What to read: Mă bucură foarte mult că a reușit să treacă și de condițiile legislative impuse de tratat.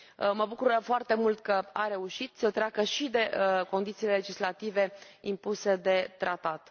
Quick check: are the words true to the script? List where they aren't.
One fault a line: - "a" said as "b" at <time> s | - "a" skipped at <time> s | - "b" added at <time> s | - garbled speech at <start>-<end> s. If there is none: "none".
none